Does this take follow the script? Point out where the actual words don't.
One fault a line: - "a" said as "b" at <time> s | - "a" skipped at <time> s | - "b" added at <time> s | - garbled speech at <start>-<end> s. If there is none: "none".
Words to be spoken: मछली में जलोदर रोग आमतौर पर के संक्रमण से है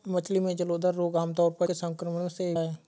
none